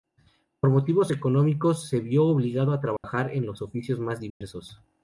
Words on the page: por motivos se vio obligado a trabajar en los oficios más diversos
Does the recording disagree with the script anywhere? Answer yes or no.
yes